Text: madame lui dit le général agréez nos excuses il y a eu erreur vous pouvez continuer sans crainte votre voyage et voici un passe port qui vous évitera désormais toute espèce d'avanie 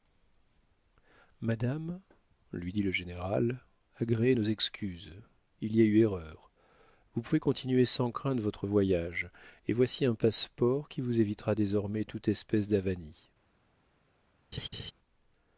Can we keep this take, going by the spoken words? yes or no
yes